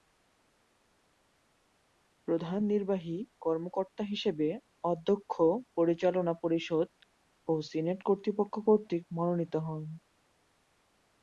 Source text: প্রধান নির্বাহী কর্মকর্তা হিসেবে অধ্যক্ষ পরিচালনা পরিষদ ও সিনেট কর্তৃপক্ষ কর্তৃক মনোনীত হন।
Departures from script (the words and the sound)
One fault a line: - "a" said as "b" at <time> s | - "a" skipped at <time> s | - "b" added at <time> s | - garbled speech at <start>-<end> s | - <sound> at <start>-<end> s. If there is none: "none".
none